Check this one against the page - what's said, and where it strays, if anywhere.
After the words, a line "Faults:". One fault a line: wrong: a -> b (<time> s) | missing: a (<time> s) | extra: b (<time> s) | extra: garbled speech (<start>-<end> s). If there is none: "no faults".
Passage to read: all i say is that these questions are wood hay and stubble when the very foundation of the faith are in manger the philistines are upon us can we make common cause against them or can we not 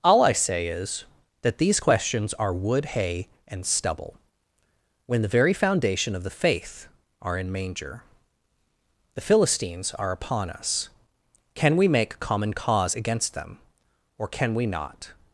all i say is that these questions are wood hay and stubble when the very foundation of the faith are in manger the philistines are upon us can we make common cause against them or can we not
Faults:
no faults